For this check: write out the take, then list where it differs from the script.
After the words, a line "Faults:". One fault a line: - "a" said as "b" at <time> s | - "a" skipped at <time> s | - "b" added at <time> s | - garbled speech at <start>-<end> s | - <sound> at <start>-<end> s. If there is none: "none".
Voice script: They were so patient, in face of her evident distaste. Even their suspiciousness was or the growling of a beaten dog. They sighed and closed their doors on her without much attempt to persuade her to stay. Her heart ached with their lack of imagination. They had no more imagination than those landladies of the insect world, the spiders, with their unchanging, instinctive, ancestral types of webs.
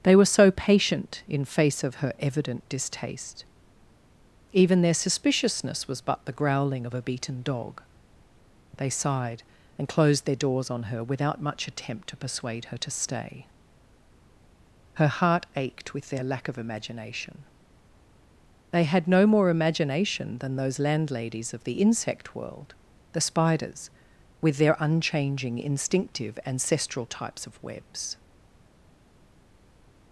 They were so patient, in face of her evident distaste. Even their suspiciousness was but the growling of a beaten dog. They sighed and closed their doors on her without much attempt to persuade her to stay. Her heart ached with their lack of imagination. They had no more imagination than those landladies of the insect world, the spiders, with their unchanging, instinctive, ancestral types of webs.
Faults:
- "or" said as "but" at 6.0 s